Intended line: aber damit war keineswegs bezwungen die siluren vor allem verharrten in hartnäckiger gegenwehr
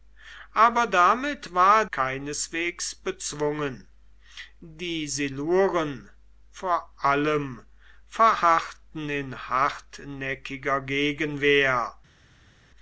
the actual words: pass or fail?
pass